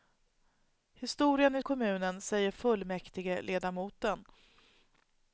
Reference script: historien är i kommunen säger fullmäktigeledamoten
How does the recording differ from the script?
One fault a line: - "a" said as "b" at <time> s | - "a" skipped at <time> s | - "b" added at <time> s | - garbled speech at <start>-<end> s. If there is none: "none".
none